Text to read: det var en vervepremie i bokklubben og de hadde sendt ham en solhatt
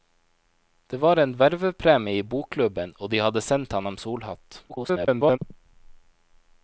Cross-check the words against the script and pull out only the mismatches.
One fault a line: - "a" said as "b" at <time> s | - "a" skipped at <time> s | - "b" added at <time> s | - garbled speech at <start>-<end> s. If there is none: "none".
- garbled speech at 4.7-5.4 s